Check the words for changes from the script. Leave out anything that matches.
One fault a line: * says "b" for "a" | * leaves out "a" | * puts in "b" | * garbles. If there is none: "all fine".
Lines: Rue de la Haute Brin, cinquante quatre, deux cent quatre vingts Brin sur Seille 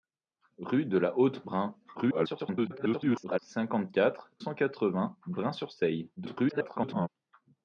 * garbles
* leaves out "deux"
* garbles